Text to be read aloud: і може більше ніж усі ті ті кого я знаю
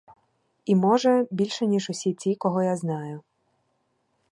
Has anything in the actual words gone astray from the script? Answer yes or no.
yes